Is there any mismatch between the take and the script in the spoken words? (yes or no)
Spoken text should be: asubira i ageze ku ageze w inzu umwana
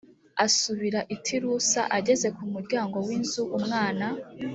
yes